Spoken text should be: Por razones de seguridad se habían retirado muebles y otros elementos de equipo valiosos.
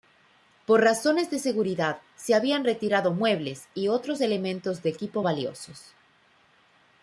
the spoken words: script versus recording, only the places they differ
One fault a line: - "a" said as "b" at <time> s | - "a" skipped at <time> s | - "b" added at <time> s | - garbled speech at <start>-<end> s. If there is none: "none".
none